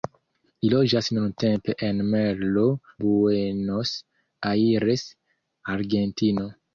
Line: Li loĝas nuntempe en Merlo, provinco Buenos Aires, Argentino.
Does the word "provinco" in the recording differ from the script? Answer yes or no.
yes